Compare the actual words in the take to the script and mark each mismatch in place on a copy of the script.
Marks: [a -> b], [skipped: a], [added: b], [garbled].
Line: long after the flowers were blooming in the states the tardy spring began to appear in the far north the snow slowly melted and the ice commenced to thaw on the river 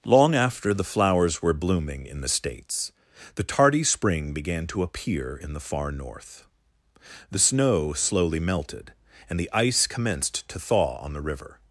long after the flowers were blooming in the states the tardy spring began to appear in the far north the snow slowly melted and the ice commenced to thaw on the river